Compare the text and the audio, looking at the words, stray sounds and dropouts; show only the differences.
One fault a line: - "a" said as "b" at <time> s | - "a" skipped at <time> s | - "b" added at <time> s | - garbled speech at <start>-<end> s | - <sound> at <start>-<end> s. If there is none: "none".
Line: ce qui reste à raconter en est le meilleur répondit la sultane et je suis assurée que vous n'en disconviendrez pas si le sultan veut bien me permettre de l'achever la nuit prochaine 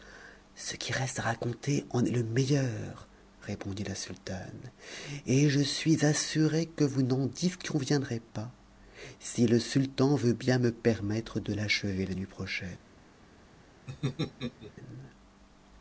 - laugh at 13.9-14.7 s